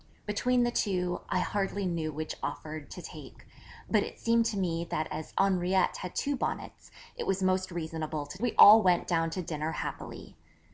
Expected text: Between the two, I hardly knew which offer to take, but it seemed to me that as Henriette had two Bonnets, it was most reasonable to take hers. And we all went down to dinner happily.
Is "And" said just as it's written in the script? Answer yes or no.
no